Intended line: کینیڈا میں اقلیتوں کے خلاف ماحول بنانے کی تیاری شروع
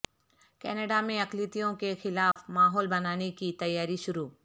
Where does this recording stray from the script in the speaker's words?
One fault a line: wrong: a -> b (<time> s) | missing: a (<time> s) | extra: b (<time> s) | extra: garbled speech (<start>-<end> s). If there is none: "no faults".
no faults